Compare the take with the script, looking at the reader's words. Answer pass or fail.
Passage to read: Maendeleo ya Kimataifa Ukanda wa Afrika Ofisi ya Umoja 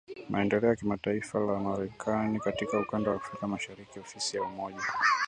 fail